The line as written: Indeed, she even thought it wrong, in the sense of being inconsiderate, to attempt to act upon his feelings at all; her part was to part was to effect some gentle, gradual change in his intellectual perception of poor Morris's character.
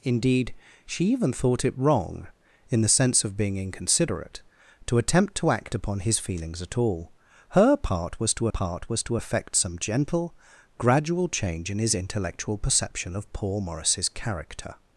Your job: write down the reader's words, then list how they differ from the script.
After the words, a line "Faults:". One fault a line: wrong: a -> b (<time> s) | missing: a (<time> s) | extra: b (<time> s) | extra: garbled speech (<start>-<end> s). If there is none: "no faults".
Indeed, she even thought it wrong, in the sense of being inconsiderate, to attempt to act upon his feelings at all; her part was to part was to effect some gentle, gradual change in his intellectual perception of poor Morris's character.
Faults:
no faults